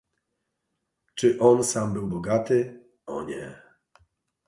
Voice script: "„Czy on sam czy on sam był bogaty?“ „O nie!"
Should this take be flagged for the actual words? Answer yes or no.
yes